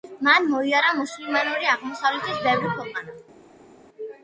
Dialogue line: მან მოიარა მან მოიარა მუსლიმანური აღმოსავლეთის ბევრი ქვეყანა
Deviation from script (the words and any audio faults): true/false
true